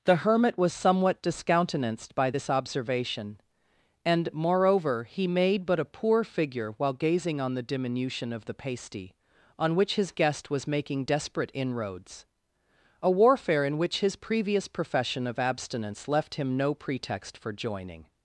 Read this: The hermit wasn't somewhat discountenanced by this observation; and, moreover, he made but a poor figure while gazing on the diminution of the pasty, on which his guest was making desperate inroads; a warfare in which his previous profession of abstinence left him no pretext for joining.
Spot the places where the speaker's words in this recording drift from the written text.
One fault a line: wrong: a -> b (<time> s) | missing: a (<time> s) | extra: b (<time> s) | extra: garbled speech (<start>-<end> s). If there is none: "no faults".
wrong: wasn't -> was (0.6 s)